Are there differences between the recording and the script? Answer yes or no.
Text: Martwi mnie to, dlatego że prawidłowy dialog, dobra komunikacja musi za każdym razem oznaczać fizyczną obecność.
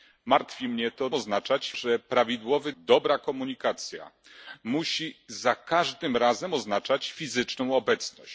yes